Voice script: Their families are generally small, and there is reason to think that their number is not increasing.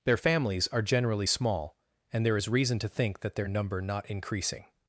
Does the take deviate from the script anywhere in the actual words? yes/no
yes